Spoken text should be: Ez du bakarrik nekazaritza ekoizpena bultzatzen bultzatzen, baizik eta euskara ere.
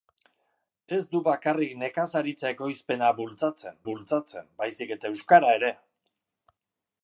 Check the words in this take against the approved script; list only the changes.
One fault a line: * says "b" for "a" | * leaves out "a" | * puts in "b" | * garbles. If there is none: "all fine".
all fine